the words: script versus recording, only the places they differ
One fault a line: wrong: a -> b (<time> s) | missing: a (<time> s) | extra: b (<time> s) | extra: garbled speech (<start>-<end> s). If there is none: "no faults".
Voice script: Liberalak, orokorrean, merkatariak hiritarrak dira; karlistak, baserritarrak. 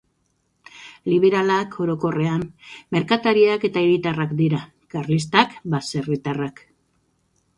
extra: eta (3.7 s)